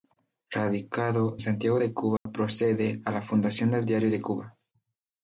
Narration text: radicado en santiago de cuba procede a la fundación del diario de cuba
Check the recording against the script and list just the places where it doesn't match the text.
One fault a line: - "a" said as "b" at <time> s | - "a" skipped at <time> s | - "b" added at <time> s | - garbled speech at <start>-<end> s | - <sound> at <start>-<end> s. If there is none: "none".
- "en" skipped at 1.4 s
- dropout at 2.2-2.3 s